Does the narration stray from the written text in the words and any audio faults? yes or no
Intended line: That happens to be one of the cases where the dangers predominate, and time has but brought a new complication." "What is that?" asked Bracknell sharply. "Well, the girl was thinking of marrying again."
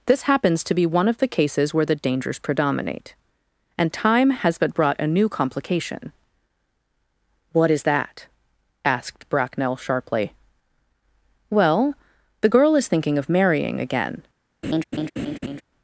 yes